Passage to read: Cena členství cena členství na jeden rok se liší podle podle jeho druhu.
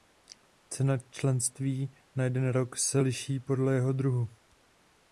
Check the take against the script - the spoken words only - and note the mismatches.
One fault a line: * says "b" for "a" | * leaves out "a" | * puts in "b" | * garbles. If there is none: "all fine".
* leaves out "cena členství"
* leaves out "podle"